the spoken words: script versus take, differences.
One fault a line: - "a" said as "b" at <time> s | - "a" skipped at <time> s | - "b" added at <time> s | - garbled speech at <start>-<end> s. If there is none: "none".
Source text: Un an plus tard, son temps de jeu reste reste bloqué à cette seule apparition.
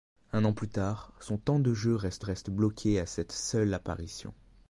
none